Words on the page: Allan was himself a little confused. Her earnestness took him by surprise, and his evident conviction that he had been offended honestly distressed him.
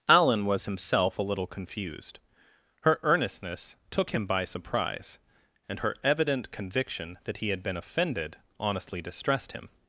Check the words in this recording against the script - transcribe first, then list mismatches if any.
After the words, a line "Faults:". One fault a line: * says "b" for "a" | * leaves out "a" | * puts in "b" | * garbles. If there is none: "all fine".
Allan was himself a little confused. Her earnestness took him by surprise, and her evident conviction that he had been offended honestly distressed him.
Faults:
* says "her" for "his"